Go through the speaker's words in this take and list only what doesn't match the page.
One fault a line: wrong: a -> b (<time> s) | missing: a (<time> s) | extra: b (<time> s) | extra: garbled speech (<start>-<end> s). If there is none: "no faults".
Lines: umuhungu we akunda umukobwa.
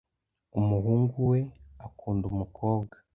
no faults